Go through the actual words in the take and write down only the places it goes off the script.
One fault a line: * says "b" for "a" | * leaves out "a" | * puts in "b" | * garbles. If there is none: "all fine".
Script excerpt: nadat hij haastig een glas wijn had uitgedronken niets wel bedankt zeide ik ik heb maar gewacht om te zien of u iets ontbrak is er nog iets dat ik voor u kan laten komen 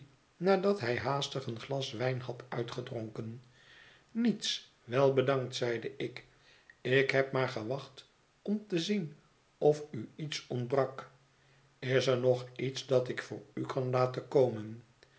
all fine